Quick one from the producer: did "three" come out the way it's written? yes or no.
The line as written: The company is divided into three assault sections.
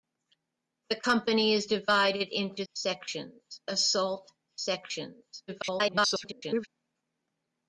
no